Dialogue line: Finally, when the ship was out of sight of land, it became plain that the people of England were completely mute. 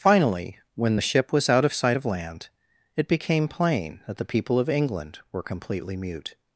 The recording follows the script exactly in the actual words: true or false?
true